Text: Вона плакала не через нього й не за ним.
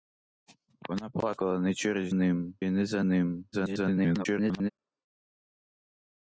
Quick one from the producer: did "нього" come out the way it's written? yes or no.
no